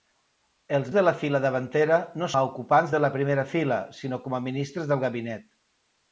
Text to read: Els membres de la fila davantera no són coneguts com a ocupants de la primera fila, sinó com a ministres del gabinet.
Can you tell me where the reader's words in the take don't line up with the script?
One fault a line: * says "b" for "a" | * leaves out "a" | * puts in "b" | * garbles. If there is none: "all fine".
* leaves out "membres"
* leaves out "són coneguts com"